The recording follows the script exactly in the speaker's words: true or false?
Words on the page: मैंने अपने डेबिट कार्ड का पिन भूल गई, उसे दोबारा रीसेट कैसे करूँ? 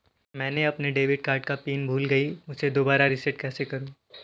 true